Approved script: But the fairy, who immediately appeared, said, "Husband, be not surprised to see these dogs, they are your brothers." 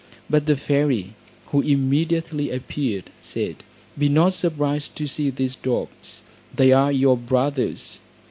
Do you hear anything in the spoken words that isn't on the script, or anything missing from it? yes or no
yes